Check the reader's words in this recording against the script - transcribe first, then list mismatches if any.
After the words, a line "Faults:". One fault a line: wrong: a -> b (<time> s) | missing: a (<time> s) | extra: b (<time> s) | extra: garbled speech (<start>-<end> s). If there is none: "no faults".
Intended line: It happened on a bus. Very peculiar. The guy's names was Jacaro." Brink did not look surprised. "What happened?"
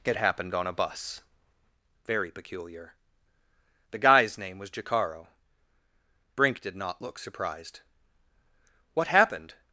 It happened on a bus. Very peculiar. The guy's name was Jacaro." Brink did not look surprised. "What happened?"
Faults:
wrong: names -> name (4.4 s)